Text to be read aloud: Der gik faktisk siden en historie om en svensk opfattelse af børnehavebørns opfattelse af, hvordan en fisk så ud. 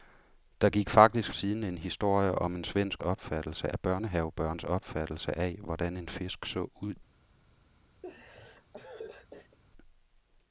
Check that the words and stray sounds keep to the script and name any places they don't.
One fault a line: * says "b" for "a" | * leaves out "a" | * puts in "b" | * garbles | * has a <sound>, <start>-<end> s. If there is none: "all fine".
* has a laugh, 8.0-9.6 s